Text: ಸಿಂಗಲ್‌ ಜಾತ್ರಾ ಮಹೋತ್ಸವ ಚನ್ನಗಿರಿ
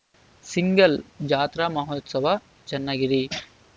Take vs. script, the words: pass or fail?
pass